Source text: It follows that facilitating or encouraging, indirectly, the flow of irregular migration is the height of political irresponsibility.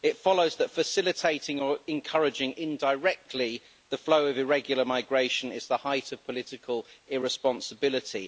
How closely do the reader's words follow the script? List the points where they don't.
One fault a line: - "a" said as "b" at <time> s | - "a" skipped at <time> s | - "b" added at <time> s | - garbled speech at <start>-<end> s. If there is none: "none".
none